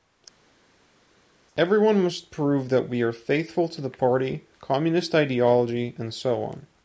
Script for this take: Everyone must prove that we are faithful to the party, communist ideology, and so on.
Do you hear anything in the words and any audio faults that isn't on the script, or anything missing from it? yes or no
no